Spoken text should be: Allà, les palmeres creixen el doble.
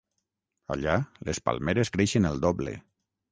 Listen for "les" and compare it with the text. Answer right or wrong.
right